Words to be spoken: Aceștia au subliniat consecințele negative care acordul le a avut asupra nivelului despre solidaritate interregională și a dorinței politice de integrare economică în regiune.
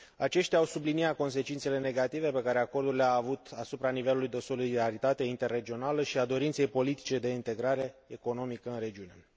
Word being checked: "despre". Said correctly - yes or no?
no